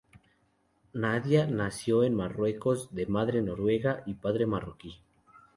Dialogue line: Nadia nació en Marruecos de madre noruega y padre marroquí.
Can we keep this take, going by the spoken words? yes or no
yes